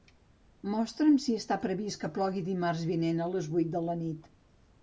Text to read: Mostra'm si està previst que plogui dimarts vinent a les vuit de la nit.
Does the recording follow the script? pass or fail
pass